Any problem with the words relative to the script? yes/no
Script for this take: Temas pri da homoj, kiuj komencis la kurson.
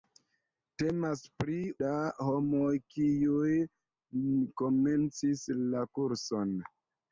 no